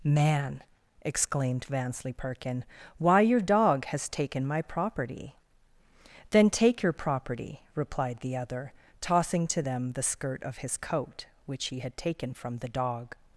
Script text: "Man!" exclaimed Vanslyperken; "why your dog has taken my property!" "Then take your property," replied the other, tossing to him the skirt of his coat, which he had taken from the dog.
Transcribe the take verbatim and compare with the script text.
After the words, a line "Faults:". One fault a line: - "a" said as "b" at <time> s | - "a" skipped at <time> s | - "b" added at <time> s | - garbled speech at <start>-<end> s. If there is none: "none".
"Man!" exclaimed Vanslyperken; "why your dog has taken my property!" "Then take your property," replied the other, tossing to them the skirt of his coat, which he had taken from the dog.
Faults:
- "him" said as "them" at 9.6 s